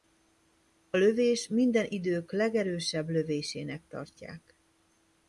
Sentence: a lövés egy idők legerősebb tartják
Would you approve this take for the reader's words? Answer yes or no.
no